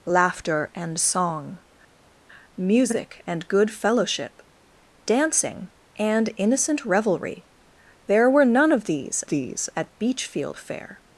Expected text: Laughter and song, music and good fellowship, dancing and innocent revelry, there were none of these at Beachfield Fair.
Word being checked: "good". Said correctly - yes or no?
yes